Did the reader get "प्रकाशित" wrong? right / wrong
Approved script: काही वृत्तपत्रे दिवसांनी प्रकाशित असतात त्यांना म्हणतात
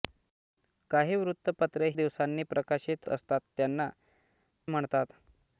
right